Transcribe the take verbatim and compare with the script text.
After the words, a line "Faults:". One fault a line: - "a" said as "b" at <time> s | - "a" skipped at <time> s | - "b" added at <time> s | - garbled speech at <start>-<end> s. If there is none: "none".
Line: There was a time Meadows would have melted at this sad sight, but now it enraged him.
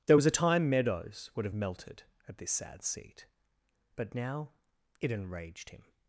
There was a time Meadows would have melted at this sad seat, but now it enraged him.
Faults:
- "sight" said as "seat" at 2.8 s